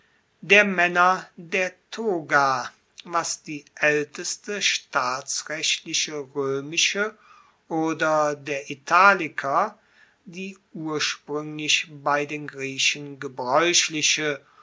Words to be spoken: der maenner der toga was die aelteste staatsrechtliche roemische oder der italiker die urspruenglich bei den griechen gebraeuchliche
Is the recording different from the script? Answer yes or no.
no